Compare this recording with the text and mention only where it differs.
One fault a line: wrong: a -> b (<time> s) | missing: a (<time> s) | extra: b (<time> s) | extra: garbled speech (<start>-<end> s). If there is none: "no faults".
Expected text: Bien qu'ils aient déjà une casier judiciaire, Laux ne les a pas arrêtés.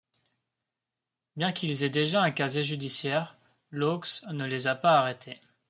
wrong: une -> un (2.2 s)